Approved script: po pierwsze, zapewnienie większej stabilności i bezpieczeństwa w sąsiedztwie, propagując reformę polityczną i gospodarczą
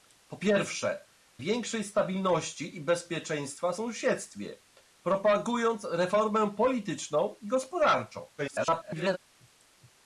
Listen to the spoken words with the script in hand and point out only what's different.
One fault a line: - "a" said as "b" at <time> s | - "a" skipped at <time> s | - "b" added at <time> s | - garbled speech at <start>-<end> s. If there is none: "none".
- "zapewnienie" skipped at 1.1 s
- garbled speech at 8.4-9.2 s